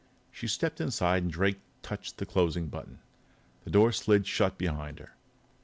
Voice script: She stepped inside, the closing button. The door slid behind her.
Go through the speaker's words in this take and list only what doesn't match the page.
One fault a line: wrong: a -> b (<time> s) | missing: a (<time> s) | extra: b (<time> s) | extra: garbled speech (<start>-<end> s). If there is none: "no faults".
extra: and Drake touched (1.2 s)
extra: shut (4.3 s)